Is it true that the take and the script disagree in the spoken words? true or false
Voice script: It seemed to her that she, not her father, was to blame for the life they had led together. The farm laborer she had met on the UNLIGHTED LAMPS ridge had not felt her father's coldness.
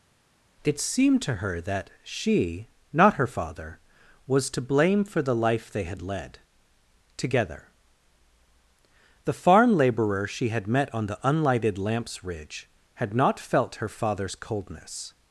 false